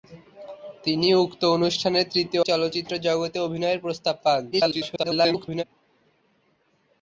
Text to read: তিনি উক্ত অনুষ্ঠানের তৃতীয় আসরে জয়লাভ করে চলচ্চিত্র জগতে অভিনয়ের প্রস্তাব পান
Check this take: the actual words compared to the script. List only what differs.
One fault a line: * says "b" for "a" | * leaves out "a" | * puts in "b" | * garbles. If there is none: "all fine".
* leaves out "আসরে জয়লাভ করে"
* garbles